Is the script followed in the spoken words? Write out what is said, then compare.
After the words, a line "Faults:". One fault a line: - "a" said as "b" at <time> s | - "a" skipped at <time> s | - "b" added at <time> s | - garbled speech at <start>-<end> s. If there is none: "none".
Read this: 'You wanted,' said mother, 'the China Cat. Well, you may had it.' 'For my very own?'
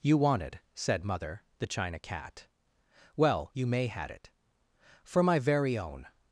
'You wanted,' said mother, 'the China Cat. Well, you may had it.' 'For my very own?'
Faults:
none